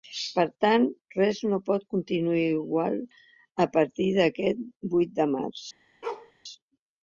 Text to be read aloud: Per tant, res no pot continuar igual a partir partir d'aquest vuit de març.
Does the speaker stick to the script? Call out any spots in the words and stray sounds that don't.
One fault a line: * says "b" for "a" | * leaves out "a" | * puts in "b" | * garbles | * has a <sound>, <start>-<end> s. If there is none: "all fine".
* leaves out "partir"
* has a bark, 6.0-6.3 s